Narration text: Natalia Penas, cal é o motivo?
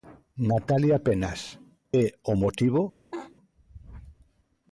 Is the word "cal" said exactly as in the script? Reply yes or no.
no